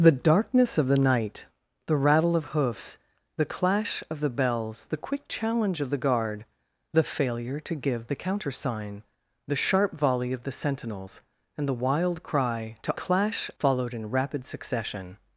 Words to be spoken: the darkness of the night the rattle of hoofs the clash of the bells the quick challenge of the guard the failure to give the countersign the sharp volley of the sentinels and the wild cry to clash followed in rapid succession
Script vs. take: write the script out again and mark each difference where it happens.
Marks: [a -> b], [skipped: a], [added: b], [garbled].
the darkness of the night the rattle of hoofs the clash of the bells the quick challenge of the guard the failure to give the countersign the sharp volley of the sentinels and the wild cry to clash followed in rapid succession